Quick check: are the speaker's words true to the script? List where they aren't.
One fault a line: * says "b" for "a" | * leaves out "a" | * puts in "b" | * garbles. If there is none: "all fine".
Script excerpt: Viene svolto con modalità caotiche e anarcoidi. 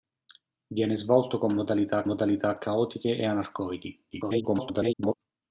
* puts in "modalità"
* garbles